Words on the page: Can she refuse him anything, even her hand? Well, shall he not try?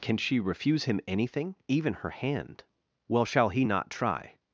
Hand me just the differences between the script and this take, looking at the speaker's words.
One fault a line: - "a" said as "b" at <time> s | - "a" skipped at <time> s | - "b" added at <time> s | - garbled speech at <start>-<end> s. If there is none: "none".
none